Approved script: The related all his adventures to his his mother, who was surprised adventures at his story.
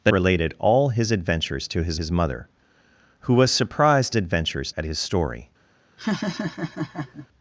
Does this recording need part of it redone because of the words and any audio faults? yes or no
yes